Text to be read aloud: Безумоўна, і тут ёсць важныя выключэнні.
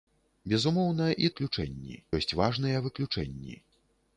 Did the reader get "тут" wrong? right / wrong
wrong